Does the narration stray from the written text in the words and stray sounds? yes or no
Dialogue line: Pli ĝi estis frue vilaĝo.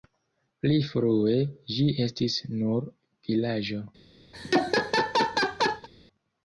yes